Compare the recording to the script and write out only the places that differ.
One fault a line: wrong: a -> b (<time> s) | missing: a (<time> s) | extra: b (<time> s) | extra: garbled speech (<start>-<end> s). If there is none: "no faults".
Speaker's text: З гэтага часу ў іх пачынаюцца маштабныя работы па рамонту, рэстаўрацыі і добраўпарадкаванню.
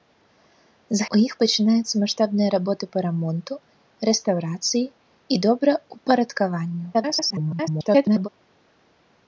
missing: гэтага часу (1.1 s)
extra: garbled speech (6.9-8.3 s)